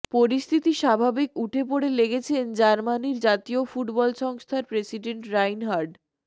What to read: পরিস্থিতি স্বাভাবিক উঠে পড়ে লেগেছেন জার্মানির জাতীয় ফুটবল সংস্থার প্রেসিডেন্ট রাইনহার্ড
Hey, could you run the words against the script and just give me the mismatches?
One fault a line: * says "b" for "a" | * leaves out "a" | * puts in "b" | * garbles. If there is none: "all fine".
all fine